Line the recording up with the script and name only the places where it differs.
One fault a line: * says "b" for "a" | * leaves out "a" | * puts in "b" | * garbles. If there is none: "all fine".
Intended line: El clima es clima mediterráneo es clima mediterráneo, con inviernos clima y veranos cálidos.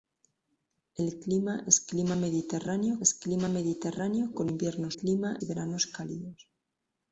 all fine